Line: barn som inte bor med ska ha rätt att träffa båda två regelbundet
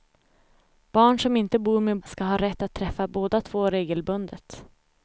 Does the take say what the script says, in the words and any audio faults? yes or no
yes